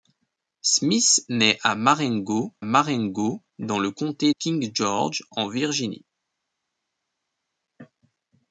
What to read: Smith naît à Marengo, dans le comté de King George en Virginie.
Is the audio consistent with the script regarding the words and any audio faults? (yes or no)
no